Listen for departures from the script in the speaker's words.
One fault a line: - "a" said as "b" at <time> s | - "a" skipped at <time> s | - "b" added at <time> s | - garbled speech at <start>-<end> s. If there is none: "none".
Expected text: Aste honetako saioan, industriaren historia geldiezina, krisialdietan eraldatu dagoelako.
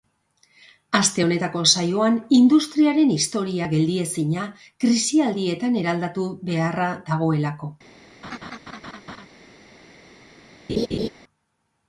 - "beharra" added at 6.5 s